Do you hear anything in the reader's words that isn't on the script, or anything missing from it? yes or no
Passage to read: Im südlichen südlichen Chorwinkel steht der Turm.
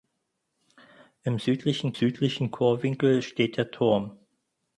no